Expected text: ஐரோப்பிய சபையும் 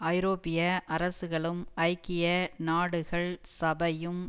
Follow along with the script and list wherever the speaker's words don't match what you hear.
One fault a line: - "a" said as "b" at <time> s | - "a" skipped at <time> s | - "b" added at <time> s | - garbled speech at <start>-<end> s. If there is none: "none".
- "அரசுகளும் ஐக்கிய நாடுகள்" added at 0.9 s